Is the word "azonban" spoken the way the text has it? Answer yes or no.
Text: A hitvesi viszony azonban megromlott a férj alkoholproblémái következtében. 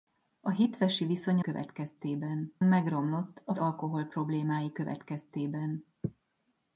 no